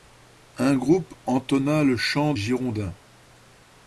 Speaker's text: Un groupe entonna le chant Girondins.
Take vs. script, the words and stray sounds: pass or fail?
pass